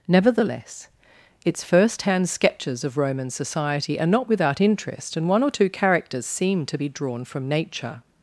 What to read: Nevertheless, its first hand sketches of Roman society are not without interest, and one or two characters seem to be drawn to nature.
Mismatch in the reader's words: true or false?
true